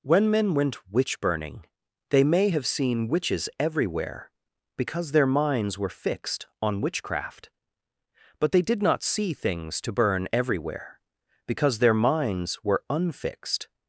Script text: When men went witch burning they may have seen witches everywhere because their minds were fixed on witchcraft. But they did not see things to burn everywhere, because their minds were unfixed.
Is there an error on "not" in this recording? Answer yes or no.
no